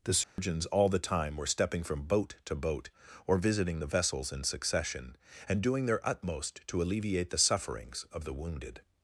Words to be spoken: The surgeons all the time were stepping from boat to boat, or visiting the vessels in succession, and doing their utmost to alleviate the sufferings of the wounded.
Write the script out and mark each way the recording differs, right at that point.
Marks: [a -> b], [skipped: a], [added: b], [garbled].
The surgeons all the time were stepping from boat to boat, or visiting the vessels in succession, and doing their utmost to alleviate the sufferings of the wounded.